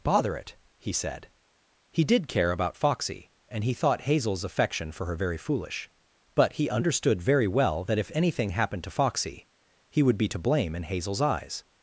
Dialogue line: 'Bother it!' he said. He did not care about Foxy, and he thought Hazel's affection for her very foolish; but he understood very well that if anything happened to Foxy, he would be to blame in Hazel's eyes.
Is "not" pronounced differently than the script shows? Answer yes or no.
yes